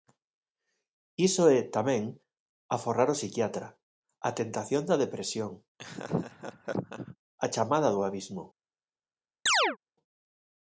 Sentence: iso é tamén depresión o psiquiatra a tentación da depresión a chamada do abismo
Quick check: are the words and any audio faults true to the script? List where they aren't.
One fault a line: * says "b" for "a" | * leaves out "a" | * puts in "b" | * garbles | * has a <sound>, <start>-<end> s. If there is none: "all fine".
* says "aforrar" for "depresión"
* has a laugh, 5.8-7.2 s
* has a chirp, 9.5-9.8 s